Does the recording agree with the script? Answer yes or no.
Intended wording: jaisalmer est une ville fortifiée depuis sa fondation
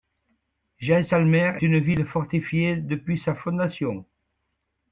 no